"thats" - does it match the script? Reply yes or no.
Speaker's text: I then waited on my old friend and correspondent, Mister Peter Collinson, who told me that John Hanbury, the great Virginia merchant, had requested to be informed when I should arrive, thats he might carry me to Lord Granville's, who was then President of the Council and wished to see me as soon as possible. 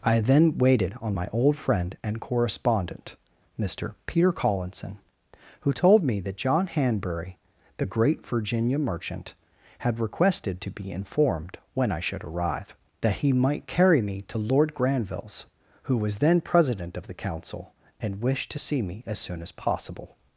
no